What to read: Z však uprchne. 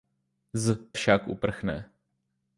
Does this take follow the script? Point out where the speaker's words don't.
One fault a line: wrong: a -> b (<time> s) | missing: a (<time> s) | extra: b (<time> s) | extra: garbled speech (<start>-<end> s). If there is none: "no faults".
no faults